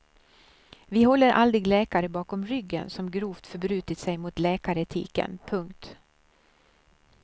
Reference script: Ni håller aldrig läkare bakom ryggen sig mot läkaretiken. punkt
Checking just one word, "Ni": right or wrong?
wrong